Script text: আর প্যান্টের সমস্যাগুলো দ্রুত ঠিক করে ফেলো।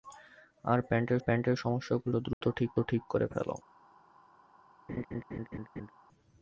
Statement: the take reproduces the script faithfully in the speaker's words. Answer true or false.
false